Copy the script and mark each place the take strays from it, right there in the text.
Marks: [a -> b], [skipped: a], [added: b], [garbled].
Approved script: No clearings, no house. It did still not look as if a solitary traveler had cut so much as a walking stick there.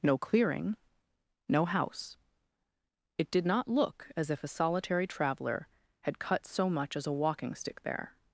No [clearings, -> clearing] no house. It did [skipped: still] not look as if a solitary traveler had cut so much as a walking stick there.